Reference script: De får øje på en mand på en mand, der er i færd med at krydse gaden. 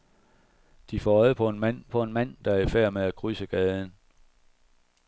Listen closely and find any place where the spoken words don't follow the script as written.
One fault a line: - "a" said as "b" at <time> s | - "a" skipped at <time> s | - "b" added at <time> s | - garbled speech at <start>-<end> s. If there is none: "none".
none